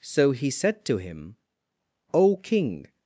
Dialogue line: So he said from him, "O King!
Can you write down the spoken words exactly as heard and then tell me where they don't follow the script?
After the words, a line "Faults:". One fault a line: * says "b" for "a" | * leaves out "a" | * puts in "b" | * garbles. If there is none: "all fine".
So he said to him, "O King!
Faults:
* says "to" for "from"